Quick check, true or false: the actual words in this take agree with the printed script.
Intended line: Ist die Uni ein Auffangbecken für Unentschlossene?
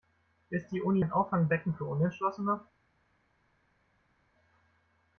true